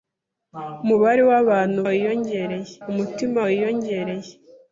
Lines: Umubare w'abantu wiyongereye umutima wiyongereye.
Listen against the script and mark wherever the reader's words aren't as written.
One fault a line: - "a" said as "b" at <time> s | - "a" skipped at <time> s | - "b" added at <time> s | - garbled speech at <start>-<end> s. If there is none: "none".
none